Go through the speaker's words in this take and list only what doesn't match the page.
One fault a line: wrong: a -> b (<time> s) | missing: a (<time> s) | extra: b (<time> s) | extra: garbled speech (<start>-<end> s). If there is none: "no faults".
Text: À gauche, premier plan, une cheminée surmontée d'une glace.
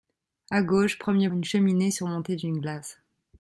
missing: plan (1.3 s)